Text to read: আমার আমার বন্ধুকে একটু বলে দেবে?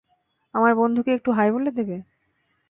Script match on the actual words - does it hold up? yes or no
no